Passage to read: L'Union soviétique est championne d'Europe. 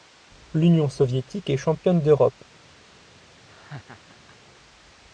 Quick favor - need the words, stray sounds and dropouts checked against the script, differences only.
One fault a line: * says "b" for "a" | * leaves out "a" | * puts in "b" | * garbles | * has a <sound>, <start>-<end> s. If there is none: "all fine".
* has a laugh, 3.5-4.4 s